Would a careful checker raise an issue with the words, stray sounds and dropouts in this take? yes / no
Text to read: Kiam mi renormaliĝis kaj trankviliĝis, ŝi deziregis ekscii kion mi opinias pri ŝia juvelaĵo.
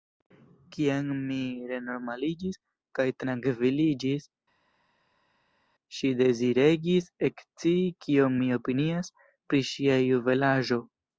no